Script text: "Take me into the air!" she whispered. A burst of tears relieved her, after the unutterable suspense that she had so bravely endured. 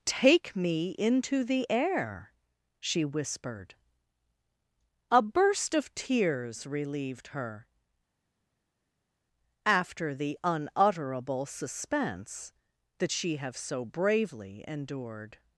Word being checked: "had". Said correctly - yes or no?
no